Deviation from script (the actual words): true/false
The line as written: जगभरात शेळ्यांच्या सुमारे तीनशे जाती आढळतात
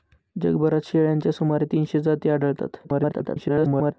true